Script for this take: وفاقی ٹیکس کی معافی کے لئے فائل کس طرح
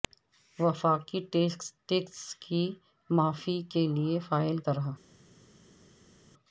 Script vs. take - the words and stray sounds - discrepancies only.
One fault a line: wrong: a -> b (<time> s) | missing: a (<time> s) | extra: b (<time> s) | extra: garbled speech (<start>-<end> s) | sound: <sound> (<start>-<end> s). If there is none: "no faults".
missing: کس (4.6 s)